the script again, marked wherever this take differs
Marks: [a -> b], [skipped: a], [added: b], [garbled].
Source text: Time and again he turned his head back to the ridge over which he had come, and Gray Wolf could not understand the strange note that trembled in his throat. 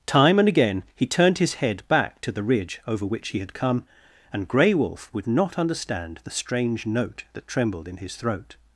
Time and again he turned his head back to the ridge over which he had come, and Gray Wolf [could -> would] not understand the strange note that trembled in his throat.